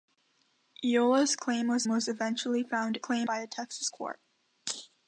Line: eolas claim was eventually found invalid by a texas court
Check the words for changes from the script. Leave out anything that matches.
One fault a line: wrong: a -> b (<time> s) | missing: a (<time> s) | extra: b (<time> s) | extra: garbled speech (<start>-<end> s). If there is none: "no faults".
extra: was (1.9 s)
wrong: invalid -> claim (3.0 s)